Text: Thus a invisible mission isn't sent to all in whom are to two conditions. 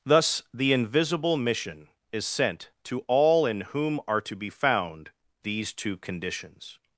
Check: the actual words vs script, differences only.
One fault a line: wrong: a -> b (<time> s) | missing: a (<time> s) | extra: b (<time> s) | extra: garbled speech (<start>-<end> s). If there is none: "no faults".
wrong: a -> the (0.5 s)
wrong: isn't -> is (2.1 s)
extra: be found these (4.3 s)